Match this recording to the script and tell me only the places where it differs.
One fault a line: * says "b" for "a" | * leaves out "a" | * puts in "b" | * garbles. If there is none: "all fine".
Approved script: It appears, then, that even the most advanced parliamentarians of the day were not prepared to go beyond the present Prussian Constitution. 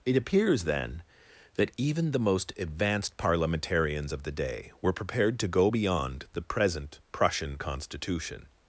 * leaves out "not"